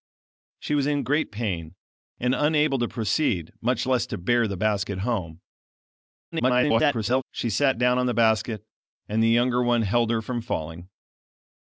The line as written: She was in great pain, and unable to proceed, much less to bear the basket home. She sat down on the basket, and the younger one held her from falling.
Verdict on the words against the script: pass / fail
fail